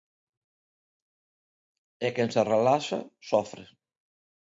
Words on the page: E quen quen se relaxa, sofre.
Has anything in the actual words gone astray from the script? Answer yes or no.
yes